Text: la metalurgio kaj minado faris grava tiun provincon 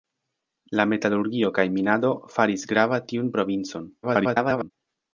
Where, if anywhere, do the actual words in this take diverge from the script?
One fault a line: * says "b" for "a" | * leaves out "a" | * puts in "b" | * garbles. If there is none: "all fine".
* garbles